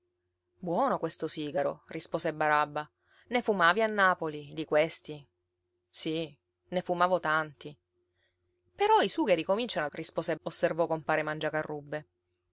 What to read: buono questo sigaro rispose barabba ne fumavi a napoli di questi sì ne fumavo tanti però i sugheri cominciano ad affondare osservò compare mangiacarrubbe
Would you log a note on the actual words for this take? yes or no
yes